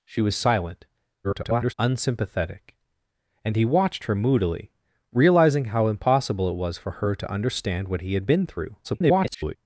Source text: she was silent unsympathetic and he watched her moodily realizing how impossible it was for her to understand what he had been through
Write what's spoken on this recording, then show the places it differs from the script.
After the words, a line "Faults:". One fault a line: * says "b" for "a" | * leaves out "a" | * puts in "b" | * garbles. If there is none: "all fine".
she was silent [garbled] unsympathetic and he watched her moodily realizing how impossible it was for her to understand what he had been through [garbled]
Faults:
* garbles
* garbles